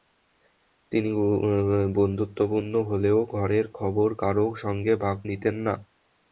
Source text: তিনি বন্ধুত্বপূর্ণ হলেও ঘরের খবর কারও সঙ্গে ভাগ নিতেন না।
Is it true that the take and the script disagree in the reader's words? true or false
false